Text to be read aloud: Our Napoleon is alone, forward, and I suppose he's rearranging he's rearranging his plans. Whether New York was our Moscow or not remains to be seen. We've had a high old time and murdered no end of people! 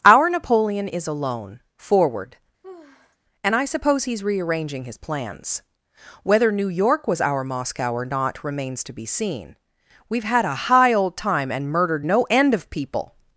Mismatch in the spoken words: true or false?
true